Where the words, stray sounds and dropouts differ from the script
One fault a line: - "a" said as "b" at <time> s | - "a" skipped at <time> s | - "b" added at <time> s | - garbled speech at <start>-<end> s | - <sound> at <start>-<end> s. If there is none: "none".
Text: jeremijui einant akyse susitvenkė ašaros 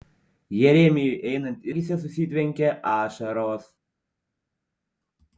none